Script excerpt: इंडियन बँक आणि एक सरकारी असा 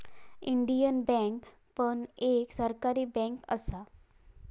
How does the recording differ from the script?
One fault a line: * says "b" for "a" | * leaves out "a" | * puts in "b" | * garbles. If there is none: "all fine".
* says "पण" for "आणि"
* puts in "बँक"